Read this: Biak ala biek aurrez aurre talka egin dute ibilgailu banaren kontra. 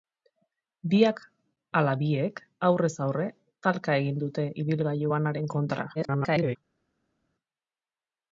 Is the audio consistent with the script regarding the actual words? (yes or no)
no